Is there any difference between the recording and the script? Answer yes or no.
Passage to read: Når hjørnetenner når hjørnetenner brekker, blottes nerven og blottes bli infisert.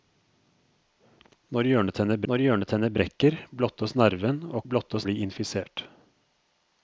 no